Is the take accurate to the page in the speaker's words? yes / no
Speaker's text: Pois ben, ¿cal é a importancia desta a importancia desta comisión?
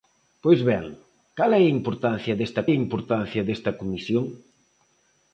yes